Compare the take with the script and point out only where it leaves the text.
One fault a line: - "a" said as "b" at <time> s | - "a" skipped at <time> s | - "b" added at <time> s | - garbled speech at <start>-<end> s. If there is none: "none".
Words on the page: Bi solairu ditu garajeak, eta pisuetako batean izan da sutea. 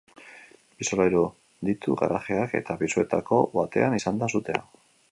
none